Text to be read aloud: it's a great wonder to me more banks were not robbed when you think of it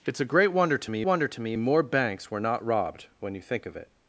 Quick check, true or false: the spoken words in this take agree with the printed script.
false